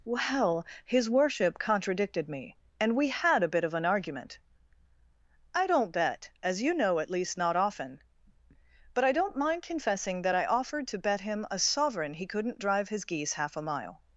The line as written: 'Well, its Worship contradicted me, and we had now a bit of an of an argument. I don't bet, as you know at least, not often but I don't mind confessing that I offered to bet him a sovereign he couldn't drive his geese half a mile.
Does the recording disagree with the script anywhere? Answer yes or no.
yes